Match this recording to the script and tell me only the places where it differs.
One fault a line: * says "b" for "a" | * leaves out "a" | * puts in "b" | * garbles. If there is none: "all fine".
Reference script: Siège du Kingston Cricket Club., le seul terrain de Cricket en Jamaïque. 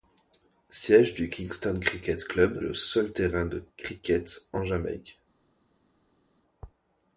all fine